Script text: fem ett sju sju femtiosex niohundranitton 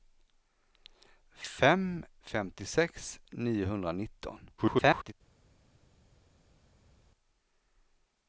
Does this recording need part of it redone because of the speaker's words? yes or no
yes